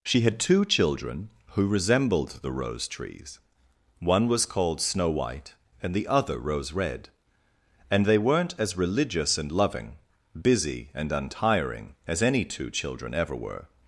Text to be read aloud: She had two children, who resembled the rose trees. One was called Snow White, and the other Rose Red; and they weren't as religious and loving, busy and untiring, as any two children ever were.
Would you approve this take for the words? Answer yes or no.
yes